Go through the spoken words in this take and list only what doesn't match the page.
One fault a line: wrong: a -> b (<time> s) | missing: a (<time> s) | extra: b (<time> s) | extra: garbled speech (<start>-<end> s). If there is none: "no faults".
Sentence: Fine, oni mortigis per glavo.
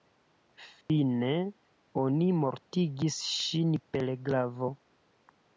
extra: ŝin (3.4 s)